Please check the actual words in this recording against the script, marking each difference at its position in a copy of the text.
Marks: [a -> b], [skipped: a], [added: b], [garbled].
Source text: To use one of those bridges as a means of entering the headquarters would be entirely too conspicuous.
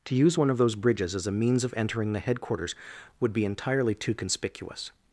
To use one of those bridges as a means of entering the headquarters would be entirely too conspicuous.